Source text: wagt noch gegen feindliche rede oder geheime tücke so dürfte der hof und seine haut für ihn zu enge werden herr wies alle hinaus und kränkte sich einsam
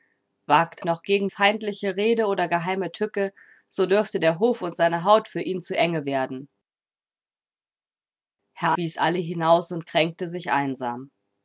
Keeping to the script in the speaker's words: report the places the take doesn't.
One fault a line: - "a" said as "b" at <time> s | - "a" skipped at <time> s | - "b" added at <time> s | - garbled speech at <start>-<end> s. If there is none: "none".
none